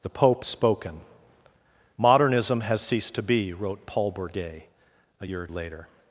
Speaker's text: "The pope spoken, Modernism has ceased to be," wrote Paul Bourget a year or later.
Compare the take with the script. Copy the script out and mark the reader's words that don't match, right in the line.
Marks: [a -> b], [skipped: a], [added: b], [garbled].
"The pope spoken, Modernism has ceased to be," wrote Paul Bourget a year or later.